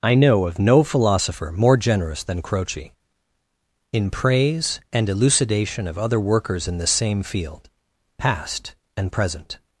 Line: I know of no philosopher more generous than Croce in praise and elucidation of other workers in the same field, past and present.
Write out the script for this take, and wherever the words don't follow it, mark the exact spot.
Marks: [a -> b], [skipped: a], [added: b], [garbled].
I know of no philosopher more generous than Croce in praise and elucidation of other workers in the same field, past and present.